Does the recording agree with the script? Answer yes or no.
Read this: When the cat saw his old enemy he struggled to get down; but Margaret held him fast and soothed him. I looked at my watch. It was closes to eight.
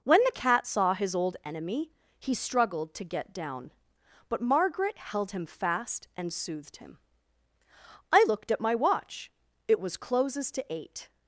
yes